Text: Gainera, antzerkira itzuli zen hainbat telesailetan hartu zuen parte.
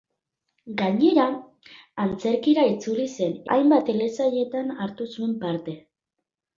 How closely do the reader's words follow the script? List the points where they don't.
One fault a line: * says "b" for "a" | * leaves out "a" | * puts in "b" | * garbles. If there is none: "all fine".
all fine